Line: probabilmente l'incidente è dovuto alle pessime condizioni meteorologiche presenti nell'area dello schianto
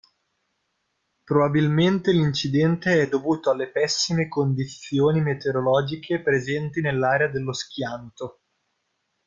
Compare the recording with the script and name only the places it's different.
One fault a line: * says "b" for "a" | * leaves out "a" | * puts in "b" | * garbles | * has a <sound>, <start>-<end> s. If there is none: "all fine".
all fine